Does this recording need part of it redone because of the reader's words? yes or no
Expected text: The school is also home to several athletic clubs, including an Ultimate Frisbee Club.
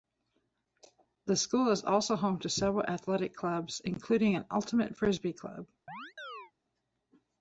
no